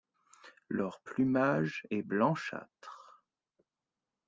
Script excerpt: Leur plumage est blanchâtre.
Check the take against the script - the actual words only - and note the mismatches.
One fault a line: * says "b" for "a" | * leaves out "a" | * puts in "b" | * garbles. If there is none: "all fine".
all fine